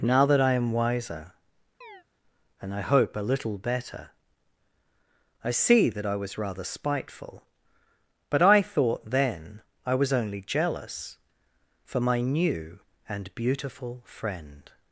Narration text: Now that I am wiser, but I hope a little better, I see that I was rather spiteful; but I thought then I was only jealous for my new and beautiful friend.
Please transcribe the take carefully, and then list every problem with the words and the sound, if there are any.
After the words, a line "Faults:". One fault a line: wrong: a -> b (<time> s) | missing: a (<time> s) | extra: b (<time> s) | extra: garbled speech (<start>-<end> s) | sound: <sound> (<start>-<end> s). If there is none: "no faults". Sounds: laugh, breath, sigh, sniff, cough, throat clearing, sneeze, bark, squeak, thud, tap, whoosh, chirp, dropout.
Now that I am wiser, and I hope a little better, I see that I was rather spiteful; but I thought then I was only jealous for my new and beautiful friend.
Faults:
sound: chirp (1.8-2.0 s)
wrong: but -> and (2.6 s)